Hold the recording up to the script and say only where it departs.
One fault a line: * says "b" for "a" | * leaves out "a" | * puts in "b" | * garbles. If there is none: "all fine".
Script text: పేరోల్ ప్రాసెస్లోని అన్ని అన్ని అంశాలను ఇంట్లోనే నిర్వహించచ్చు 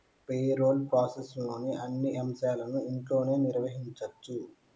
* leaves out "అన్ని"